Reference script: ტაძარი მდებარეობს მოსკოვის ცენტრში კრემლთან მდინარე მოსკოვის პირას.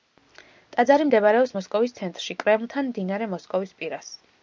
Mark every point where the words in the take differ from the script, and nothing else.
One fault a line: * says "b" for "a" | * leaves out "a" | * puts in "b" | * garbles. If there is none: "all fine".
all fine